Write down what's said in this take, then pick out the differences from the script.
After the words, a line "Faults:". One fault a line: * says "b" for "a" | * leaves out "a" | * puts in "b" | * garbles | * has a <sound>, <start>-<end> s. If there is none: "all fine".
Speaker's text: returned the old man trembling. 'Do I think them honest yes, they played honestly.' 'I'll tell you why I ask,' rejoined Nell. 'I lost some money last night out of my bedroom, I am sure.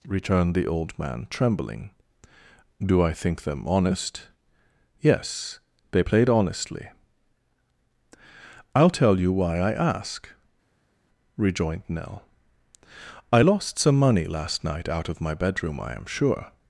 returned the old man trembling. 'Do I think them honest yes, they played honestly.' 'I'll tell you why I ask,' rejoined Nell. 'I lost some money last night out of my bedroom, I am sure.
Faults:
all fine